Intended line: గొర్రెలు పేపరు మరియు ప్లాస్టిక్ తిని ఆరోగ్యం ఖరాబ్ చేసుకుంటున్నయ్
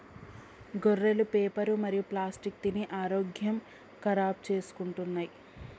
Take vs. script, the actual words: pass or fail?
pass